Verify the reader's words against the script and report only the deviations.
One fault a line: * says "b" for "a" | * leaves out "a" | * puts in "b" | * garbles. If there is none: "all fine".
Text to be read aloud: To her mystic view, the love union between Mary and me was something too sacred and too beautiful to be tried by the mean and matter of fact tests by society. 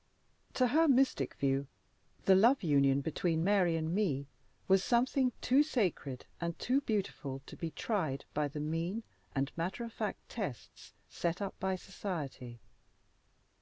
* puts in "set up"